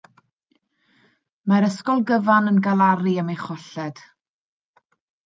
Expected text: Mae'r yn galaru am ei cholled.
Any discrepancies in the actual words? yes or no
yes